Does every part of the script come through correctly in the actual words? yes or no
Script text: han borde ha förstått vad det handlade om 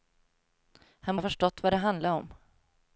no